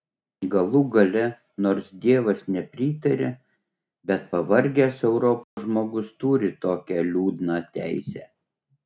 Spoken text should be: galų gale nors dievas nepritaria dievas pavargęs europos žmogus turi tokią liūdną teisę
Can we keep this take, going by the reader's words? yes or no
no